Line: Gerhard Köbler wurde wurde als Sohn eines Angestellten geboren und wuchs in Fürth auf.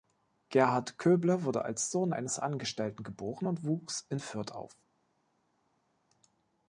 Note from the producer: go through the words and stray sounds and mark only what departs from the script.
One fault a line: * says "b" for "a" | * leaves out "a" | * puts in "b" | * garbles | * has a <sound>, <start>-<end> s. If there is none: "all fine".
* leaves out "wurde"